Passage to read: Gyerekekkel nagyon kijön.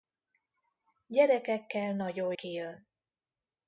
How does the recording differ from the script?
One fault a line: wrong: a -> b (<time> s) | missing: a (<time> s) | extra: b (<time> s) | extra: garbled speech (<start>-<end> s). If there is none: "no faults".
no faults